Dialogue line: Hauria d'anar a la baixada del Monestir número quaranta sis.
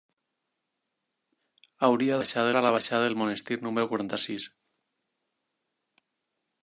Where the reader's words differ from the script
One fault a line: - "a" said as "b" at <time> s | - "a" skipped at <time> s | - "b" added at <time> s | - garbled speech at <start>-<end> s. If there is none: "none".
- "d'anar" said as "baixada" at 2.2 s